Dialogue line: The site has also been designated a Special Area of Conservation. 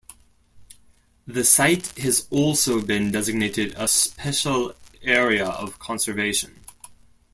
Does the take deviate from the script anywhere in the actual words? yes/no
no